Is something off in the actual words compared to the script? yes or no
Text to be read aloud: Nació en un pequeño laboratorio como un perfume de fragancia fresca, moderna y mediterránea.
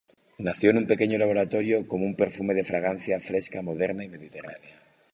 no